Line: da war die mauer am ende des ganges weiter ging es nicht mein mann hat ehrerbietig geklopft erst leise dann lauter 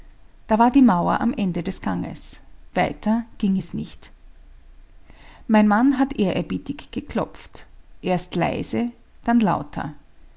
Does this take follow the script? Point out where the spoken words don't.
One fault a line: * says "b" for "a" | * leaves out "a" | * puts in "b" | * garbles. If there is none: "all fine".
all fine